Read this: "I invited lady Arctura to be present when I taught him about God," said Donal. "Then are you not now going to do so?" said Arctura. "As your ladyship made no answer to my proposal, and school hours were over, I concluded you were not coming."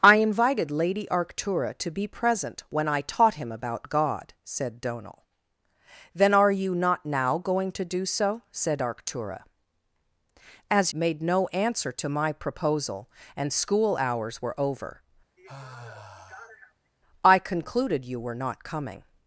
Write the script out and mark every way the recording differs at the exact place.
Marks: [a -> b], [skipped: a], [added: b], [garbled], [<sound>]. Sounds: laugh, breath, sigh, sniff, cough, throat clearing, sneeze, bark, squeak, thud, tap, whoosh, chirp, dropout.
"I invited lady Arctura to be present when I taught him about God," said Donal. "Then are you not now going to do so?" said Arctura. "As [skipped: your ladyship] made no answer to my proposal, and school hours were over, [sigh] I concluded you were not coming."